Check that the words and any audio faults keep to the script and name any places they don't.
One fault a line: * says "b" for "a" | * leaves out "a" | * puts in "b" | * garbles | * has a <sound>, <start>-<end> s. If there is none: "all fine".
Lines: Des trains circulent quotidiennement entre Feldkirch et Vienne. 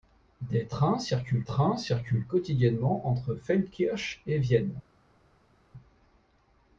* puts in "trains circulent"